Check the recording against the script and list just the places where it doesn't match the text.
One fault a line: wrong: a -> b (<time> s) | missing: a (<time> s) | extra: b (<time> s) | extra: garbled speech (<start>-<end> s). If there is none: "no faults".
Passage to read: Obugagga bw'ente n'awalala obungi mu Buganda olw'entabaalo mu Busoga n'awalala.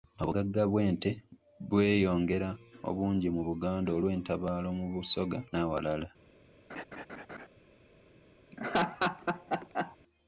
wrong: n'awalala -> bweyongera (1.7 s)